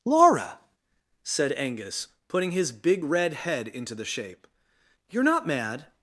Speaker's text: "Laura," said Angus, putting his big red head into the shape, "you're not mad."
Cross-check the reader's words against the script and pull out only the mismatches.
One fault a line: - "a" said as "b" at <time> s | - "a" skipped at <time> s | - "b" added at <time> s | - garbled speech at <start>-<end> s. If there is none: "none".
none